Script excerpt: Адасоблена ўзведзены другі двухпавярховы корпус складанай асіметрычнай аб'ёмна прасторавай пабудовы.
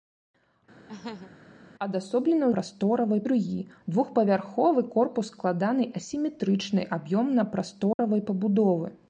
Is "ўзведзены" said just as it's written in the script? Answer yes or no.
no